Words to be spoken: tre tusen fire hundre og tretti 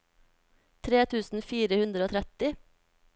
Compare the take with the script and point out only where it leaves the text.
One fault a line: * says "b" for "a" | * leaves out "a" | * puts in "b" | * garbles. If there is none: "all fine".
all fine